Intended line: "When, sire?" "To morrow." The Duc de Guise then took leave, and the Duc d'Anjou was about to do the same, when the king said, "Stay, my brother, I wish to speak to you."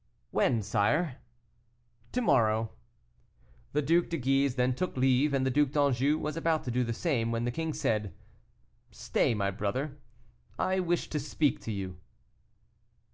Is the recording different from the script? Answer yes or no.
no